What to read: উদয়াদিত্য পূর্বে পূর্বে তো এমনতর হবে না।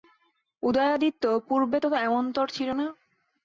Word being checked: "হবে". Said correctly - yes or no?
no